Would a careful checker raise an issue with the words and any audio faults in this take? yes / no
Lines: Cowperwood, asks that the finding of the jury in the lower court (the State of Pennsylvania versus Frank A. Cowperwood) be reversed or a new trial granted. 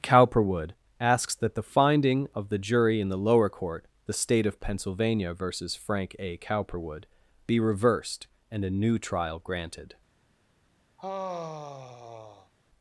yes